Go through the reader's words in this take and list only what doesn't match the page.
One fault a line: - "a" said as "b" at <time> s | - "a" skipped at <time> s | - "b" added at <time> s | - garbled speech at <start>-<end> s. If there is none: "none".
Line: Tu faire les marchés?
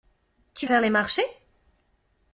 none